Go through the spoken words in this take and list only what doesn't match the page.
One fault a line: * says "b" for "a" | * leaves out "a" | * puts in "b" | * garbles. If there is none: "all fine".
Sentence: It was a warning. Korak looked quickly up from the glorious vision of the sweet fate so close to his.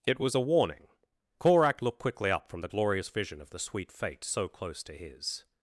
all fine